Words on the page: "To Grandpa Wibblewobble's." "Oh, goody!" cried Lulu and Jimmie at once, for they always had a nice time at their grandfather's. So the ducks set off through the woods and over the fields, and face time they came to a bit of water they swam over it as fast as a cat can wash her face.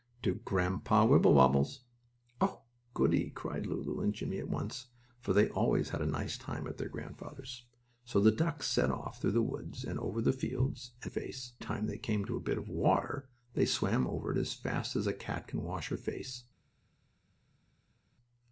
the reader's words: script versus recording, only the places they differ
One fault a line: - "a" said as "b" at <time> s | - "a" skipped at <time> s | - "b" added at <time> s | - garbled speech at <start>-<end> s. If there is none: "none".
none